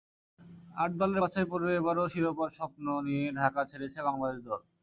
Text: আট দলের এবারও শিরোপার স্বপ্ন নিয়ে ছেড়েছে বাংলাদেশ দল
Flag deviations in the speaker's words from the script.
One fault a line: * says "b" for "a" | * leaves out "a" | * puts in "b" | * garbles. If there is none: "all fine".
* puts in "বাছাইপর্বে"
* puts in "ঢাকা"